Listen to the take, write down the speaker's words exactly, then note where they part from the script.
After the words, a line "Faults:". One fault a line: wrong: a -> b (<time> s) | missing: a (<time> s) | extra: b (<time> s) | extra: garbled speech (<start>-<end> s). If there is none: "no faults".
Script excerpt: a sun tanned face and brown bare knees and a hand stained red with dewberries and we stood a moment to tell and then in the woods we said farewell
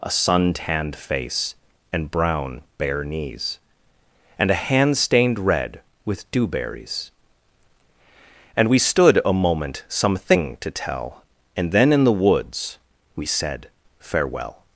a sun tanned face and brown bare knees and a hand stained red with dewberries and we stood a moment some thing to tell and then in the woods we said farewell
Faults:
extra: some thing (9.9 s)